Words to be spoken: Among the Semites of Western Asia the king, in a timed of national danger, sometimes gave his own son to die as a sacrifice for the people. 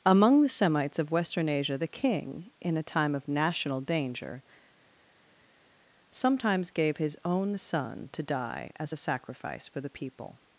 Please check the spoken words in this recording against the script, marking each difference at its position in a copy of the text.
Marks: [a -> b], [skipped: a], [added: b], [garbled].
Among the Semites of Western Asia the king, in a [timed -> time] of national danger, sometimes gave his own son to die as a sacrifice for the people.